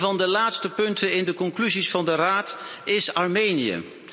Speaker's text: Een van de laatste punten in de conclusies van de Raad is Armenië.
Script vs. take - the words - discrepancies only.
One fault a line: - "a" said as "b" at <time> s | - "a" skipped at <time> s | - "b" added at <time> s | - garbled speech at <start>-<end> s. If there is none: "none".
none